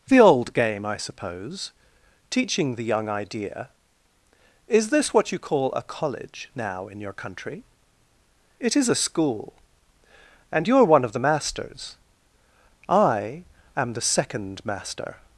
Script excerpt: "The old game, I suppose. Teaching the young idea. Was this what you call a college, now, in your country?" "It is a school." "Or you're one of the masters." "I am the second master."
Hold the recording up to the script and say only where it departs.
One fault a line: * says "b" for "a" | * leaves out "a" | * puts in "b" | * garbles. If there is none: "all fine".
* says "Is" for "Was"
* says "And" for "Or"